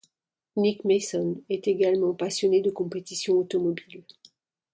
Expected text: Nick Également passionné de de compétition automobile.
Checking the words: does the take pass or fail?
fail